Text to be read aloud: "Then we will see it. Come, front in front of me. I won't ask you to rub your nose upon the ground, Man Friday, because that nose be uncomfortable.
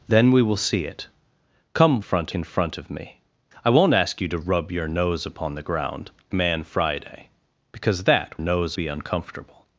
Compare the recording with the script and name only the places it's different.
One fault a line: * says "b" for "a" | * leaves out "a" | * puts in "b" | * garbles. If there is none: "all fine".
all fine